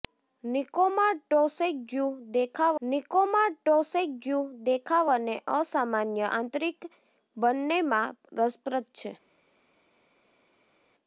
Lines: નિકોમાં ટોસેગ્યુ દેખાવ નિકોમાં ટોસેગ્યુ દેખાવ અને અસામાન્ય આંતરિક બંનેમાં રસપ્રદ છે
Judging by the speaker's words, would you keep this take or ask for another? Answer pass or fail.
pass